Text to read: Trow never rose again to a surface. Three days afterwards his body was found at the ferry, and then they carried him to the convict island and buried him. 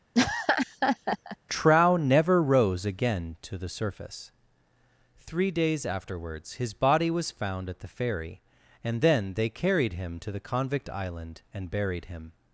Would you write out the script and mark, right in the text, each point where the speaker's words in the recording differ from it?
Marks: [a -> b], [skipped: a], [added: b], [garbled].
Trow never rose again to [a -> the] surface. Three days afterwards his body was found at the ferry, and then they carried him to the convict island and buried him.